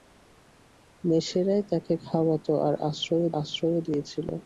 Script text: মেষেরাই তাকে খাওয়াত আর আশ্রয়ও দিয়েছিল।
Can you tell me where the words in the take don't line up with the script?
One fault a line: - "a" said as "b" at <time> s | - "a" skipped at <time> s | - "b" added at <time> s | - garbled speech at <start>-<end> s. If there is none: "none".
- "আশ্রয়ও" added at 3.4 s